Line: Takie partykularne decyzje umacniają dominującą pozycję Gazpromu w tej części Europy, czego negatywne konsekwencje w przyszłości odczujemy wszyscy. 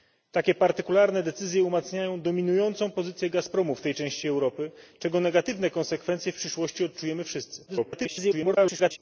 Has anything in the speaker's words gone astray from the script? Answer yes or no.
yes